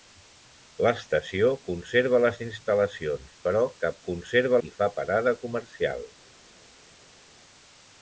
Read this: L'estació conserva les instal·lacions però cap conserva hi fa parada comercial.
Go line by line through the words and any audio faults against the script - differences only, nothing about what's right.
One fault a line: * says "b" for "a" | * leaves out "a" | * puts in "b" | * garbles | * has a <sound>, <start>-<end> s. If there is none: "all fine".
all fine